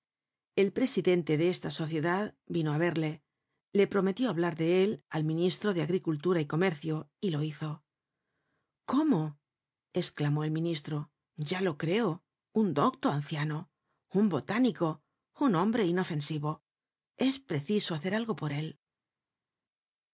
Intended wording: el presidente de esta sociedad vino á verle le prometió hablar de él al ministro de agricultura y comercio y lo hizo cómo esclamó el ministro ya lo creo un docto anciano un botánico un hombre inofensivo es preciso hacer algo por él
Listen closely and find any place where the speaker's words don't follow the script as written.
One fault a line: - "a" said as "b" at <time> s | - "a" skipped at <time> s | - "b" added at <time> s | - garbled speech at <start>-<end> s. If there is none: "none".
none